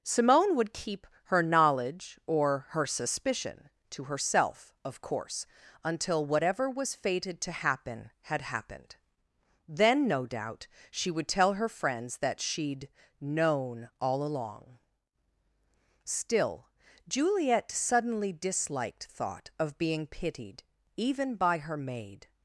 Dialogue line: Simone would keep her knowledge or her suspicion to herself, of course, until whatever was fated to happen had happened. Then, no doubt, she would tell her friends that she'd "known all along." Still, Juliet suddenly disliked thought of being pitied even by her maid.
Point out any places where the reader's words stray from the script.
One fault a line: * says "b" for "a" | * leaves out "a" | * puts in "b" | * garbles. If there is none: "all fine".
all fine